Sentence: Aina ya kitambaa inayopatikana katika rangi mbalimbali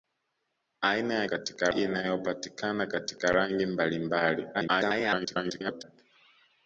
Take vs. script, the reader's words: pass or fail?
fail